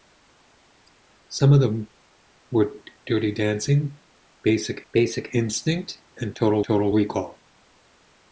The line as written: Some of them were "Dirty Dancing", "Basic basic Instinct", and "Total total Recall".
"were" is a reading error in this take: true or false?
false